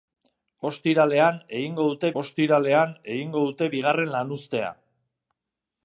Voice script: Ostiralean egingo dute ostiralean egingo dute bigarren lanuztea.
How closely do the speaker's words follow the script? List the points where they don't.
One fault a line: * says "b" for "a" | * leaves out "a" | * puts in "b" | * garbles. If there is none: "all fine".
all fine